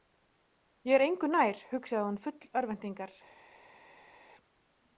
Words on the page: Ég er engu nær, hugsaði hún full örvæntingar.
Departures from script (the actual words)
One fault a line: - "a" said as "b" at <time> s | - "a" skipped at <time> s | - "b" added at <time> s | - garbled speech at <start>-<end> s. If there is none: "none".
none